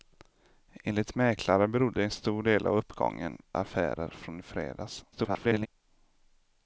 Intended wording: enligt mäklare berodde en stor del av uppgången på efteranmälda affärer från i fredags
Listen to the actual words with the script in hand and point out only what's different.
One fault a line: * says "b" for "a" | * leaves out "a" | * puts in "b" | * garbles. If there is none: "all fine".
* leaves out "på efteranmälda"
* garbles